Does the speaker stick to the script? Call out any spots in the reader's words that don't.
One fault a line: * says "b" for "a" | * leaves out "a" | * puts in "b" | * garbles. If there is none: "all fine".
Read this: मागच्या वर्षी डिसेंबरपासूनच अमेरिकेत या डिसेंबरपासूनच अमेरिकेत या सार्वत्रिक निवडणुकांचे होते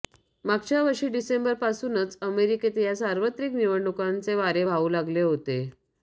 * says "सार्वत्रिक निवडणुकांचे वारे वाहू लागले" for "डिसेंबरपासूनच अमेरिकेत या सार्वत्रिक निवडणुकांचे"